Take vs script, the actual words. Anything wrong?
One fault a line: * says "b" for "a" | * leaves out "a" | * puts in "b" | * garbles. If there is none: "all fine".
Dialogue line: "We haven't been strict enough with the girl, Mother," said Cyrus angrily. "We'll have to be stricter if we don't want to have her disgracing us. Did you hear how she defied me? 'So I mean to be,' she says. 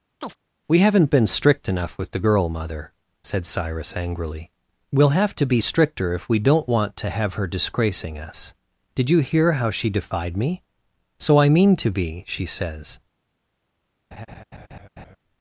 all fine